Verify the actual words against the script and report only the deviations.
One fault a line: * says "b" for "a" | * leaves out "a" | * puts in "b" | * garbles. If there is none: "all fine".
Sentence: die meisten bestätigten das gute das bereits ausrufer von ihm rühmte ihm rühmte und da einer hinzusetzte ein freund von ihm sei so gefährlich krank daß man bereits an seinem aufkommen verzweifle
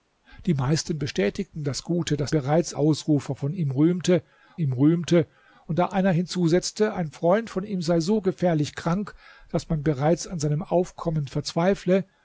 all fine